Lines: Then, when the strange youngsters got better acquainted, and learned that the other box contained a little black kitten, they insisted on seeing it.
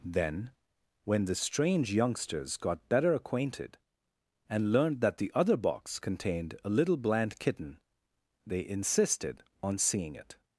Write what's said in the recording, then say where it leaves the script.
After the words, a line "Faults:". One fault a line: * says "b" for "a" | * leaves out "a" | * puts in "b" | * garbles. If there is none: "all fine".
Then, when the strange youngsters got better acquainted, and learned that the other box contained a little bland kitten, they insisted on seeing it.
Faults:
* says "bland" for "black"